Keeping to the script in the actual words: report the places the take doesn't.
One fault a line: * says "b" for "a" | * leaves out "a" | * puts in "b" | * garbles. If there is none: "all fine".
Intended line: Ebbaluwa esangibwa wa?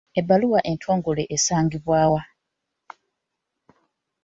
* puts in "entongole"